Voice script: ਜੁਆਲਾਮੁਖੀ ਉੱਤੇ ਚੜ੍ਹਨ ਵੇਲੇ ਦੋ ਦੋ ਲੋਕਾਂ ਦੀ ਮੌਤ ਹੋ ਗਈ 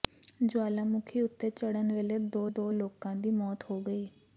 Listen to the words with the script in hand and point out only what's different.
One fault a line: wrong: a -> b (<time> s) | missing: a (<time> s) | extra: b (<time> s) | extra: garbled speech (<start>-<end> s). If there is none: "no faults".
no faults